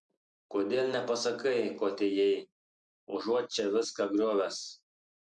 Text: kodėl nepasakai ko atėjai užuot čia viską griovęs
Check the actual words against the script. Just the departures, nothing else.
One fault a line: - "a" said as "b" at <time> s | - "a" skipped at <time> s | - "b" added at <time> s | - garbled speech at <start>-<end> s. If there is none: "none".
none